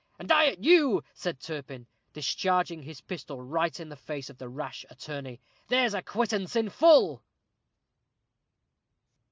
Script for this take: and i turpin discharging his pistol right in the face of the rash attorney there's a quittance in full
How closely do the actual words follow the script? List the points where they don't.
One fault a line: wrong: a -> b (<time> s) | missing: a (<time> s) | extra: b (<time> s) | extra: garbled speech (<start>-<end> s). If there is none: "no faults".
extra: at you said (0.5 s)